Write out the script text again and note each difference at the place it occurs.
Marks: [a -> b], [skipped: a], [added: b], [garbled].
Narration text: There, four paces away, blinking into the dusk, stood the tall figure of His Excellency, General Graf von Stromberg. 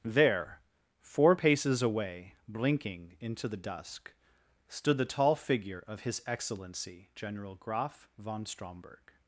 There, four paces away, blinking into the dusk, stood the tall figure of His Excellency, General Graf von Stromberg.